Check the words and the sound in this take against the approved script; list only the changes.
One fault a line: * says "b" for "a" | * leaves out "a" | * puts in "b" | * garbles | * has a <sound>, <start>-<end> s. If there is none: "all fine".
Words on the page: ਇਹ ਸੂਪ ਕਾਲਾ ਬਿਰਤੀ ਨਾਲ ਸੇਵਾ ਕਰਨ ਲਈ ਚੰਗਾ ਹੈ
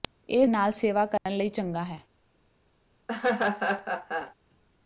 * leaves out "ਸੂਪ ਕਾਲਾ ਬਿਰਤੀ"
* has a dropout, 1.2-1.3 s
* has a laugh, 3.1-4.3 s